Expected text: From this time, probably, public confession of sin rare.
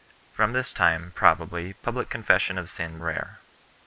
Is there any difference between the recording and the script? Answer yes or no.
no